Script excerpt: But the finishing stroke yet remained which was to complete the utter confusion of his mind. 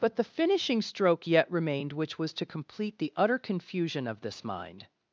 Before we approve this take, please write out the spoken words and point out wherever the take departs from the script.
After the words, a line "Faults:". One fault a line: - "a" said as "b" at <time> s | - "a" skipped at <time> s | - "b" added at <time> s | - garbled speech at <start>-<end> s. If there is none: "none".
But the finishing stroke yet remained which was to complete the utter confusion of this mind.
Faults:
- "his" said as "this" at 4.2 s